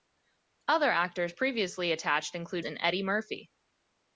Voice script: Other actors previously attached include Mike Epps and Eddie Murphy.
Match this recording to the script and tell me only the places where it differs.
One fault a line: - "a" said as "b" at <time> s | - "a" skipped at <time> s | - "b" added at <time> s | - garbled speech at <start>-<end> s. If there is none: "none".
- "Mike Epps" skipped at 2.6 s